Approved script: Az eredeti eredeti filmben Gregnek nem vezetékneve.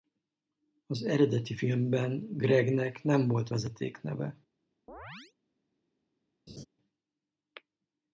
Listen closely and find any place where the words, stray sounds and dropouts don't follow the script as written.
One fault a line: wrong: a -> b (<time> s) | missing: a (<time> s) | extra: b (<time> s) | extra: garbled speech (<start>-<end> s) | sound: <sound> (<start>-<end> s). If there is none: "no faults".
missing: eredeti (1.5 s)
extra: volt (3.3 s)
sound: chirp (4.9-5.3 s)
sound: laugh (6.5-6.7 s)